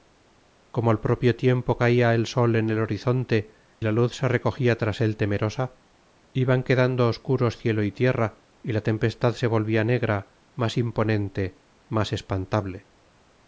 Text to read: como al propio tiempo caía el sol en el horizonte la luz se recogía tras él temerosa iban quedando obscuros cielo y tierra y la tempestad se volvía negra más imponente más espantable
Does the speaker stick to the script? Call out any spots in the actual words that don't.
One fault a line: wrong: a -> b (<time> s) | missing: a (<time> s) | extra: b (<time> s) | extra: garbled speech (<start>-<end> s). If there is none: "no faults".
no faults